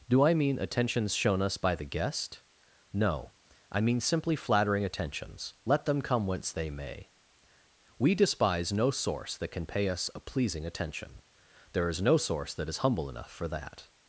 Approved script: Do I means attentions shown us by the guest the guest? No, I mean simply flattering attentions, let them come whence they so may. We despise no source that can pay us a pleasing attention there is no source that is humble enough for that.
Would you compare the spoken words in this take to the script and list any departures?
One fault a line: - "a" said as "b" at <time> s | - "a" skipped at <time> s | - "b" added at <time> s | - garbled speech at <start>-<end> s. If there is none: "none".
- "means" said as "mean" at 0.3 s
- "the guest" skipped at 2.4 s
- "so" skipped at 6.7 s